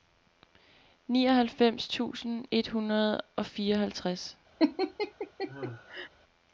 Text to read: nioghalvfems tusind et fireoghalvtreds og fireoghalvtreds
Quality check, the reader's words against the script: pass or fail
fail